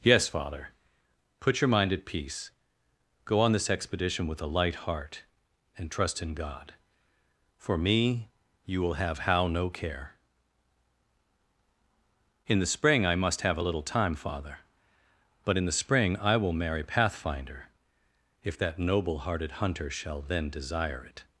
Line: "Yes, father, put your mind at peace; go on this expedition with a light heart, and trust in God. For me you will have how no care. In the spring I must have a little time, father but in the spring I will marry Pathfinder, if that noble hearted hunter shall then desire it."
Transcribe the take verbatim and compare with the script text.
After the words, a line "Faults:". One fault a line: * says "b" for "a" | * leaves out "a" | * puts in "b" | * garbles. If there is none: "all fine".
"Yes, father, put your mind at peace; go on this expedition with a light heart, and trust in God. For me you will have how no care. In the spring I must have a little time, father but in the spring I will marry Pathfinder, if that noble hearted hunter shall then desire it."
Faults:
all fine